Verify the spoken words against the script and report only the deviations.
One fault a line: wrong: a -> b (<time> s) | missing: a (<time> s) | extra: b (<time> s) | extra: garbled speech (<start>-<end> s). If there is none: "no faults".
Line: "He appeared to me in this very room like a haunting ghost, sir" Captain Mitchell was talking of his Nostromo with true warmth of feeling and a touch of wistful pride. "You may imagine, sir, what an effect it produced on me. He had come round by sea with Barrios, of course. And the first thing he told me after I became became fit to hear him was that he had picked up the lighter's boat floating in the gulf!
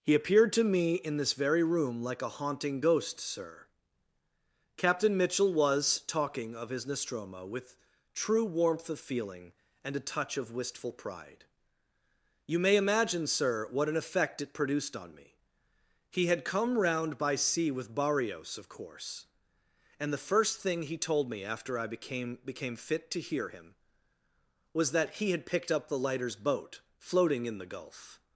no faults